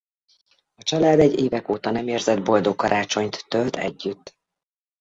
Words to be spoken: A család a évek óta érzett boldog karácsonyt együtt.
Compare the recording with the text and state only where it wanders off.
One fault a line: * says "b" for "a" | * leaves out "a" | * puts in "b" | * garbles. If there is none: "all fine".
* says "egy" for "a"
* puts in "nem"
* puts in "tölt"